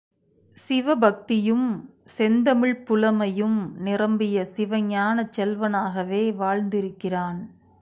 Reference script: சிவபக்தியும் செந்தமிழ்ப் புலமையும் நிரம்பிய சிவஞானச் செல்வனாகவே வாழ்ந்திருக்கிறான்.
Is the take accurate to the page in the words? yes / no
yes